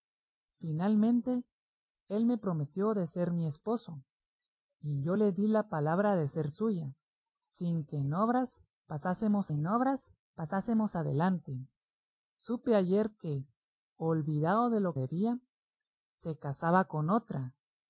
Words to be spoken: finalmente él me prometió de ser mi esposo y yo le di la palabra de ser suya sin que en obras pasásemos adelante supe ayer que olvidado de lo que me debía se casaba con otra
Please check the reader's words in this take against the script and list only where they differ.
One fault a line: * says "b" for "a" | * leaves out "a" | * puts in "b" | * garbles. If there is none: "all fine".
* puts in "en obras pasásemos"
* leaves out "que me"